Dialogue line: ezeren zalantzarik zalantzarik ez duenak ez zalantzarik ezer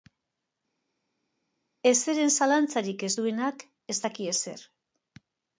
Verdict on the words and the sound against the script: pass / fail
fail